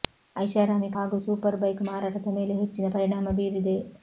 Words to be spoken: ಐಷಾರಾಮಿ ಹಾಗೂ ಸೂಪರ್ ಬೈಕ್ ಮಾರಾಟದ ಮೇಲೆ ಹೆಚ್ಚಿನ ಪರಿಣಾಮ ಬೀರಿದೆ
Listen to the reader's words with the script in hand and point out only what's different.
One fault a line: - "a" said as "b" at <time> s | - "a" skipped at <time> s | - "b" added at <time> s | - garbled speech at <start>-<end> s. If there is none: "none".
none